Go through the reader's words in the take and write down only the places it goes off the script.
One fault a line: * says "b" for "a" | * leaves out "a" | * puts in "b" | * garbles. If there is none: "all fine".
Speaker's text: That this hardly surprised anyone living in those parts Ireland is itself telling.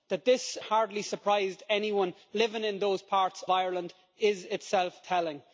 all fine